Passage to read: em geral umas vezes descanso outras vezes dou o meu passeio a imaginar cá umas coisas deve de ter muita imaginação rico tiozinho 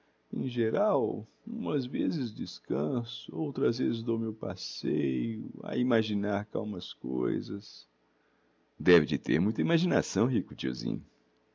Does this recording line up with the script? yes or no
yes